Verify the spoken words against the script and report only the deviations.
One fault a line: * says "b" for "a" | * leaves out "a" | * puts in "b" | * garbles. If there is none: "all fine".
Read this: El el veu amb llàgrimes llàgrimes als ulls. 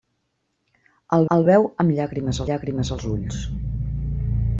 all fine